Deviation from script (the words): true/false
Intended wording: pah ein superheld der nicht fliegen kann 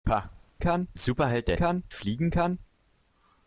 true